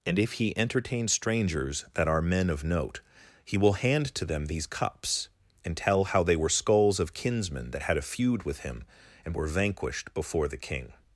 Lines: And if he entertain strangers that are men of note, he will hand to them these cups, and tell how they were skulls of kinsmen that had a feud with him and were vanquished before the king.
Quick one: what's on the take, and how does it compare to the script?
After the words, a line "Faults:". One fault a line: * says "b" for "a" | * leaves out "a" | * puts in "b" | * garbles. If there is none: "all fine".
And if he entertain strangers that are men of note, he will hand to them these cups, and tell how they were skulls of kinsmen that had a feud with him and were vanquished before the king.
Faults:
all fine